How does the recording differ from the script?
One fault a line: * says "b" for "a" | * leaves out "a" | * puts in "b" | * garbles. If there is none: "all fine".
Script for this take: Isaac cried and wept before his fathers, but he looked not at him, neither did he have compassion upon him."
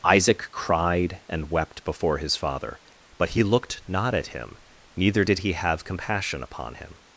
* says "father" for "fathers"